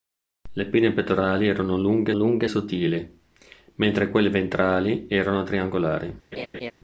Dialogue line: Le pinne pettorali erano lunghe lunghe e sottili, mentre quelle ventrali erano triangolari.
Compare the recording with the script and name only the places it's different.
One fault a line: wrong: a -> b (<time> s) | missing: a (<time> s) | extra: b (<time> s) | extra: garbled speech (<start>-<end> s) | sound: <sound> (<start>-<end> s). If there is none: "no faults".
sound: laugh (6.3-6.7 s)